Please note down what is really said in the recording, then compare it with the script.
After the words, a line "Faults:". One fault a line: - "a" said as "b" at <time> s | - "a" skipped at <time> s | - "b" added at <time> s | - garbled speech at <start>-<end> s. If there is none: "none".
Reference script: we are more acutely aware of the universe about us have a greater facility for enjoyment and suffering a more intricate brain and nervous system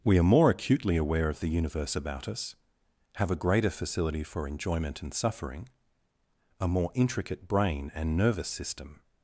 we are more acutely aware of the universe about us have a greater facility for enjoyment and suffering a more intricate brain and nervous system
Faults:
none